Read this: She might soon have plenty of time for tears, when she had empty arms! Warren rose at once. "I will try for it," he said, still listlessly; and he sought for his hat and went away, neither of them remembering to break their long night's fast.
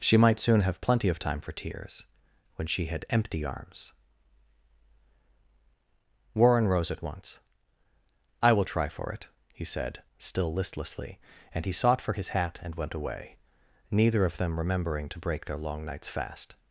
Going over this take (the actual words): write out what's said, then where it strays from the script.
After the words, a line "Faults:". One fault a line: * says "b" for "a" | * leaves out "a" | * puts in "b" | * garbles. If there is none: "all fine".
She might soon have plenty of time for tears, when she had empty arms! Warren rose at once. "I will try for it," he said, still listlessly; and he sought for his hat and went away, neither of them remembering to break their long night's fast.
Faults:
all fine